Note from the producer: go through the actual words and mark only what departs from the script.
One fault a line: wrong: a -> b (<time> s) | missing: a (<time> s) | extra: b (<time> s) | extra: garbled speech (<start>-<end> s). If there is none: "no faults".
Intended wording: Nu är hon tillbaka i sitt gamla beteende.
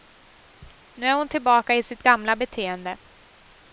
no faults